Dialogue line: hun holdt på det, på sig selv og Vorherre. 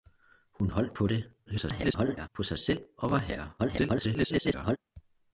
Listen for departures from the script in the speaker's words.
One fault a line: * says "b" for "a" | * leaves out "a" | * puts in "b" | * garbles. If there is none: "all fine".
* garbles
* garbles